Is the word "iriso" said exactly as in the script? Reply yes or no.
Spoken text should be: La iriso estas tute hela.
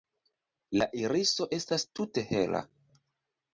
yes